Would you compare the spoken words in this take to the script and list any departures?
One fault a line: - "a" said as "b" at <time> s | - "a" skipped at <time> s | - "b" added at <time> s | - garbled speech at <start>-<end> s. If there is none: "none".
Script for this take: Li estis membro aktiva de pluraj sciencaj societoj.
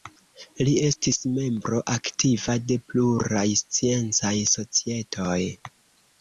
none